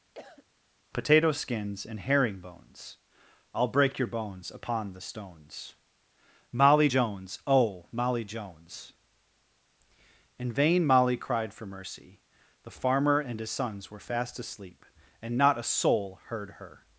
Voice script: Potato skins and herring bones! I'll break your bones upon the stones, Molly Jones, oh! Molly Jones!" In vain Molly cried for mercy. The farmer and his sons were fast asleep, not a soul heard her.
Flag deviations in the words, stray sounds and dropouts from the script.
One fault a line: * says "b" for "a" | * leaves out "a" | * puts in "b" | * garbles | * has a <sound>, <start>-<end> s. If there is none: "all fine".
* has a cough, 0.1-0.4 s
* puts in "and"